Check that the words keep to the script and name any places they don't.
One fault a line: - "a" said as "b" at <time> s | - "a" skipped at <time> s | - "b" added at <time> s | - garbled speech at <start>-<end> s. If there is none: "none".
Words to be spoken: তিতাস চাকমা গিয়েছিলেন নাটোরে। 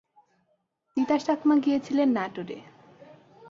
none